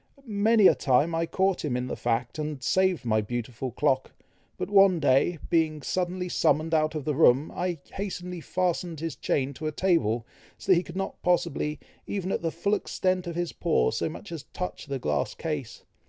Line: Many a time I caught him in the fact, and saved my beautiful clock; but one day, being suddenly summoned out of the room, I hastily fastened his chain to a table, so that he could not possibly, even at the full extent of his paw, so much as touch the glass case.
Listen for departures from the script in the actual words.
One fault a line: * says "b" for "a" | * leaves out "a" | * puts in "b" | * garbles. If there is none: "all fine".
all fine